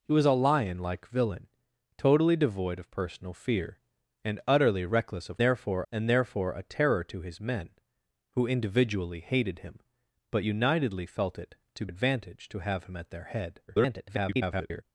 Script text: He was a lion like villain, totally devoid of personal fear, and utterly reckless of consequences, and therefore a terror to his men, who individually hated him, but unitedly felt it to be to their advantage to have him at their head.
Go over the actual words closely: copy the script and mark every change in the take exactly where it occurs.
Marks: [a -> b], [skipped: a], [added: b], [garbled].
He was a lion like villain, totally devoid of personal fear, and utterly reckless of [consequences, -> therefore] and therefore a terror to his men, who individually hated him, but unitedly felt it to [skipped: be to their] advantage to have him at their head. [garbled]